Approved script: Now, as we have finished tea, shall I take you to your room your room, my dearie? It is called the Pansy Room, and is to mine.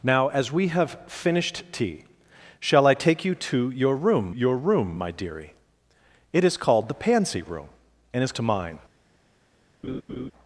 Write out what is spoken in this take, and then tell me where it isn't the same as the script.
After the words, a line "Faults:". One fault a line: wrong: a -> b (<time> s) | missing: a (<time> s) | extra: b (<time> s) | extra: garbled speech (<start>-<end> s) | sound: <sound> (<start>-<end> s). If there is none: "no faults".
Now, as we have finished tea, shall I take you to your room your room, my dearie? It is called the Pansy Room, and is to mine.
Faults:
sound: laugh (9.8-10.3 s)